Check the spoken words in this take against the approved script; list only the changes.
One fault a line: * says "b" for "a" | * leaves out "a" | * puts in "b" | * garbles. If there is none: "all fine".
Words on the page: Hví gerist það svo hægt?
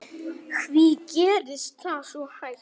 all fine